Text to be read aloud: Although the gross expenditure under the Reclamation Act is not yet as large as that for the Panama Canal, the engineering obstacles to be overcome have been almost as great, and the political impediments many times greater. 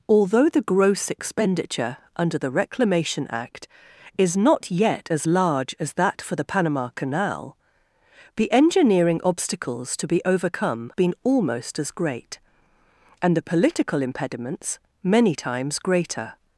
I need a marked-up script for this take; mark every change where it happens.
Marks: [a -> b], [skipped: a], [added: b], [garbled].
Although the gross expenditure under the Reclamation Act is not yet as large as that for the Panama Canal, the engineering obstacles to be overcome [skipped: have] been almost as great, and the political impediments many times greater.